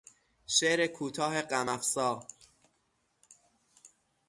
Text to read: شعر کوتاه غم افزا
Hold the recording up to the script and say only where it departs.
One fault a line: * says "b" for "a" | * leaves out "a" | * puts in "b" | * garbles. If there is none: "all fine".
all fine